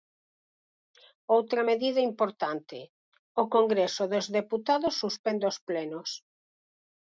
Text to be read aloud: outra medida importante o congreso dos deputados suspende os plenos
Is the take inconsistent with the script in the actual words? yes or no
no